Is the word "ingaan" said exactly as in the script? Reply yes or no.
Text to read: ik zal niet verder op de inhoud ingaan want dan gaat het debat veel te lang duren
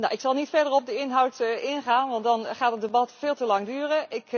yes